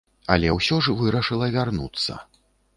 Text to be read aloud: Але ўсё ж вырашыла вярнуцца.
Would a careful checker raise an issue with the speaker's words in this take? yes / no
no